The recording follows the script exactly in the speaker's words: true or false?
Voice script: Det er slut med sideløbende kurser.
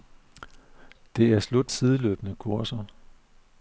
false